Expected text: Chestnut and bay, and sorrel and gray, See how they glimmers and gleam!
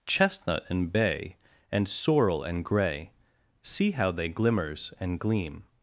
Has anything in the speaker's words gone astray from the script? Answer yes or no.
no